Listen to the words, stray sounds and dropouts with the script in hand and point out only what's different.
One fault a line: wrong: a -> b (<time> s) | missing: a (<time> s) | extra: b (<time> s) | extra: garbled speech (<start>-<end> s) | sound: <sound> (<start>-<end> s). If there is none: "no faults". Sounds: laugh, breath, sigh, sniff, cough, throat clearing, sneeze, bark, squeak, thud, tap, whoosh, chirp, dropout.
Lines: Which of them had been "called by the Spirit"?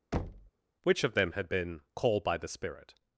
sound: thud (0.1-0.5 s)